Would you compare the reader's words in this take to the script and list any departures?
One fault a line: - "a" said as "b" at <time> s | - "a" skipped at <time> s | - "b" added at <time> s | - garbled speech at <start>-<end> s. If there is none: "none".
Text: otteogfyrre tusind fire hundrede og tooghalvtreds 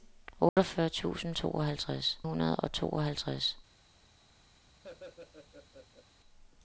- "fire" said as "tooghalvtreds" at 1.3 s